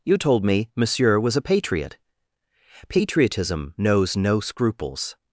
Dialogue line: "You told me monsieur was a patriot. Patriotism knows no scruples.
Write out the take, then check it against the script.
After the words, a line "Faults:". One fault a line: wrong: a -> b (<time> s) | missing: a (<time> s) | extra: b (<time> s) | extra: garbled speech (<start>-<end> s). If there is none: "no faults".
"You told me monsieur was a patriot. Patriotism knows no scruples.
Faults:
no faults